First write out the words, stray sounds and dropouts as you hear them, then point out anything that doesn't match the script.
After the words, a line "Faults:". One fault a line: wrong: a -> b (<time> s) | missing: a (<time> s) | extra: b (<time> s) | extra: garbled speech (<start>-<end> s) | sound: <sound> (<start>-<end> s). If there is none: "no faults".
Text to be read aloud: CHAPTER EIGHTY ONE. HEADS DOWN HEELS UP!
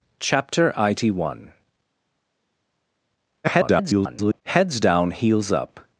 CHAPTER EIGHTY ONE. [garbled] HEADS DOWN HEELS UP!
Faults:
extra: garbled speech (3.4-4.4 s)